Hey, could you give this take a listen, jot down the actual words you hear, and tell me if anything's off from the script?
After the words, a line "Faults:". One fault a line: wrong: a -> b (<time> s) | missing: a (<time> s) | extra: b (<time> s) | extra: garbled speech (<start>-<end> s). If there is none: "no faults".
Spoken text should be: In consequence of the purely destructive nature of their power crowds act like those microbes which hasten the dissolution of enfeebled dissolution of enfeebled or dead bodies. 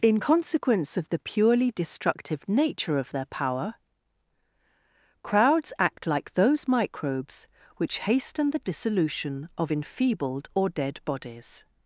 In consequence of the purely destructive nature of their power crowds act like those microbes which hasten the dissolution of enfeebled or dead bodies.
Faults:
missing: dissolution of enfeebled (10.5 s)